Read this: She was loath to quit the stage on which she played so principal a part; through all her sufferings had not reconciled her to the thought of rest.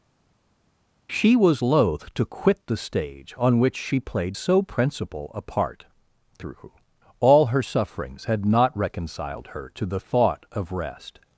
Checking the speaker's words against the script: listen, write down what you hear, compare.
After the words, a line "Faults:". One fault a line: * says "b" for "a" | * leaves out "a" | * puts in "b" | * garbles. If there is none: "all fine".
She was loath to quit the stage on which she played so principal a part; through all her sufferings had not reconciled her to the thought of rest.
Faults:
all fine